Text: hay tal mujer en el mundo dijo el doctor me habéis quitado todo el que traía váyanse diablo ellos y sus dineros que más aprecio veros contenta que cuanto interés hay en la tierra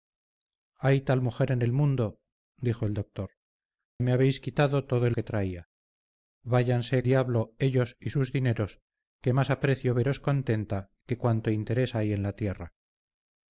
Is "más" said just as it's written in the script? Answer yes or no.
yes